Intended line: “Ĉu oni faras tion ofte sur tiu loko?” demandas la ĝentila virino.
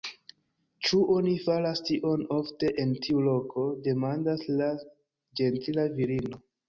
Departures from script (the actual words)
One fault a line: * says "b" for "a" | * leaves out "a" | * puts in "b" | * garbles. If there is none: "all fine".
* says "en" for "sur"